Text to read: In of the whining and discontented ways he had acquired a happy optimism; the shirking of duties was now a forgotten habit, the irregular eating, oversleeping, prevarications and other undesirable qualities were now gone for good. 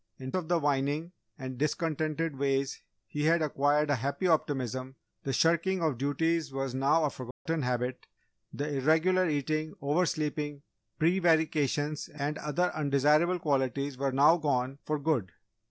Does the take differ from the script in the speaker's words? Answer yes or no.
no